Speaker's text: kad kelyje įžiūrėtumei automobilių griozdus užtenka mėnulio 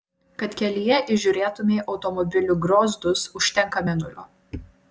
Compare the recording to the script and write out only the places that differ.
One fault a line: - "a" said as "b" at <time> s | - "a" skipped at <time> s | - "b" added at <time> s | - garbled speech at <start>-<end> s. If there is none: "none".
none